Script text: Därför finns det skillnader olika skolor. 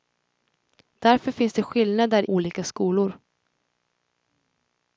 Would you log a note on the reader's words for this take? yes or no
no